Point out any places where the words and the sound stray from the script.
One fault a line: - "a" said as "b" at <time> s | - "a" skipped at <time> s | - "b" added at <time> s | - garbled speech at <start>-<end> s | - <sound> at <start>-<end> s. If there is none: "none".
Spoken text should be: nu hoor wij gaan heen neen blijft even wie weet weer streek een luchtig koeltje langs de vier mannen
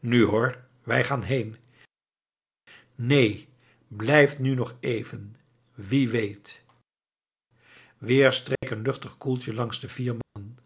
- "nu nog" added at 4.4 s
- dropout at 8.6-8.6 s
- dropout at 10.2-10.4 s